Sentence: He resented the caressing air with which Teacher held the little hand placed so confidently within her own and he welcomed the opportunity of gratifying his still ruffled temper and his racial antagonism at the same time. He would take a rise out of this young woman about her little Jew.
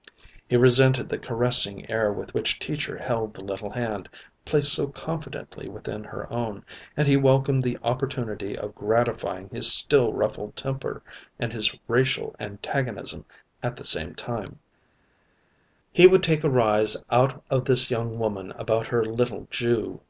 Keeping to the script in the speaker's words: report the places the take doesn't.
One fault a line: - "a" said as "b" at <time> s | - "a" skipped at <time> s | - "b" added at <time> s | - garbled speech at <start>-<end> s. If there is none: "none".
none